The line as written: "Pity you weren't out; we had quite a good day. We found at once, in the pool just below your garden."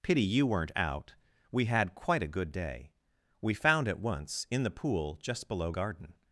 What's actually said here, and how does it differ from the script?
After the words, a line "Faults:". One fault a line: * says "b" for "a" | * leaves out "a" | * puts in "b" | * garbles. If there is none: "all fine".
"Pity you weren't out; we had quite a good day. We found at once, in the pool just below garden."
Faults:
* leaves out "your"